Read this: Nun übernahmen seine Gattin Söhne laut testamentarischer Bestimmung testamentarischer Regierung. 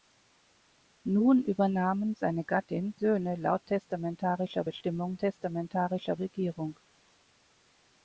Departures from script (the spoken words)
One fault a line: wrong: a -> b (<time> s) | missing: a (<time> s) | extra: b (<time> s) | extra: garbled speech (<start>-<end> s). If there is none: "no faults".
no faults